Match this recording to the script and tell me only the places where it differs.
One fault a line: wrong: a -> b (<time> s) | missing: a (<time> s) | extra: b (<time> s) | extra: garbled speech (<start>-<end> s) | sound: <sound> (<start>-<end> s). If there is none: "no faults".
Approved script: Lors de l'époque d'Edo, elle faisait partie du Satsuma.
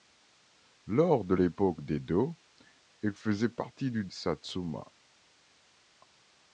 no faults